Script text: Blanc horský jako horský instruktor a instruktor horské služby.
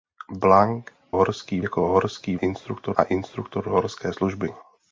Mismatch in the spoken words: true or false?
false